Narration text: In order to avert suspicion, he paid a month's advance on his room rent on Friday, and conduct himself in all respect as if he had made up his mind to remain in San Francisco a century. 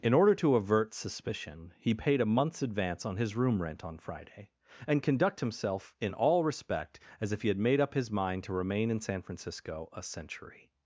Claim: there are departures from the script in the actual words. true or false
false